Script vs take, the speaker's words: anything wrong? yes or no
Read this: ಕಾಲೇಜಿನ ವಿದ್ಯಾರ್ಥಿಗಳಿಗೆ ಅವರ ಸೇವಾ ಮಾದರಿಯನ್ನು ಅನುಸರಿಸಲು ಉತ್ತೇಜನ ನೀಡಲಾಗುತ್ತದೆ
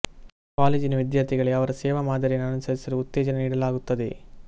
no